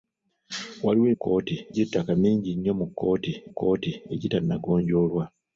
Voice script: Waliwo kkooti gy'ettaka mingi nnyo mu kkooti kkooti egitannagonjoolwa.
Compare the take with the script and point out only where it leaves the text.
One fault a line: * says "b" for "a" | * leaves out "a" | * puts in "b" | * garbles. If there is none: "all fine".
all fine